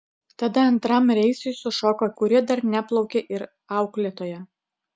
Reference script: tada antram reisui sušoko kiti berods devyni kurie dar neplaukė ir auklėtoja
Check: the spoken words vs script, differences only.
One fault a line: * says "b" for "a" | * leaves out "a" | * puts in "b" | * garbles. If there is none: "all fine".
* leaves out "kiti berods devyni"